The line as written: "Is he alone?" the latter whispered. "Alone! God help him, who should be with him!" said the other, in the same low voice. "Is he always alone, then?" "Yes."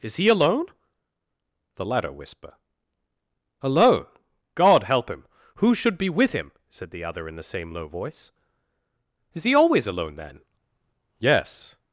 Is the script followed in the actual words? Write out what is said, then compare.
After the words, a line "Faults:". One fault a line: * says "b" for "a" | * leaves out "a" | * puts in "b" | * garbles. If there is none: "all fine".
"Is he alone?" the latter whisper. "Alone! God help him, who should be with him!" said the other, in the same low voice. "Is he always alone, then?" "Yes."
Faults:
* says "whisper" for "whispered"